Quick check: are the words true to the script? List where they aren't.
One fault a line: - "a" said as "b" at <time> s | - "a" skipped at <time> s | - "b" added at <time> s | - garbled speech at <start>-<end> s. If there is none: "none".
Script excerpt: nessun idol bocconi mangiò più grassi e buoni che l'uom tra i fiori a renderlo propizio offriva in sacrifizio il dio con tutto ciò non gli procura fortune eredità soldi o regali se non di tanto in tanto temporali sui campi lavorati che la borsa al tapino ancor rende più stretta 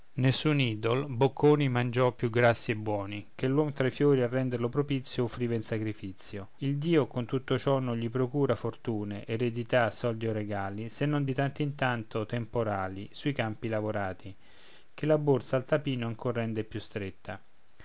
none